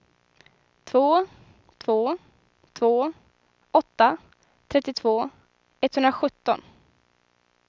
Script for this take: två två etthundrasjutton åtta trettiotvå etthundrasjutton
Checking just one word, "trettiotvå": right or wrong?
right